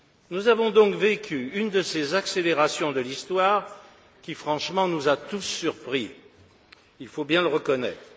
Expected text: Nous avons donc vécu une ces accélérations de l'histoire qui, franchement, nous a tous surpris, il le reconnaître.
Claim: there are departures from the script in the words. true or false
true